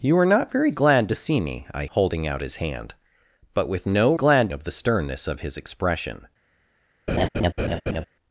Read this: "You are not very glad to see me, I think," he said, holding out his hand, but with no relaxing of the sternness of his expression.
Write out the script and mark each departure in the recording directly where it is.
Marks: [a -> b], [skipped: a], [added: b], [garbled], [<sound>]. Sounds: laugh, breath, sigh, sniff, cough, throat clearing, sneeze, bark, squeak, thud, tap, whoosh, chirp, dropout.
"You are not very glad to see me, I [skipped: think," he said,] holding out his hand, but with no [relaxing -> glad] of the sternness of his expression. [laugh]